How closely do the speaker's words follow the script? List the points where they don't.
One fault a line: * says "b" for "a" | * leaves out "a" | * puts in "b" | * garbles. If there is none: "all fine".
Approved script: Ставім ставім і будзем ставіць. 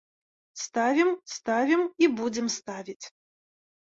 all fine